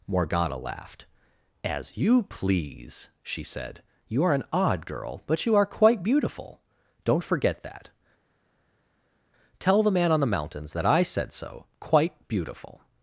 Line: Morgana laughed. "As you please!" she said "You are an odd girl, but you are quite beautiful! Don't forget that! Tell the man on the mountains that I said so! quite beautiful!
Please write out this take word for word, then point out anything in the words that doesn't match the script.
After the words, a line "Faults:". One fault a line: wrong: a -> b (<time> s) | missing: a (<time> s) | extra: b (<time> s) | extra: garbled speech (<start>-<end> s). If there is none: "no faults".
Morgana laughed. "As you please!" she said "You are an odd girl, but you are quite beautiful! Don't forget that! Tell the man on the mountains that I said so! quite beautiful!
Faults:
no faults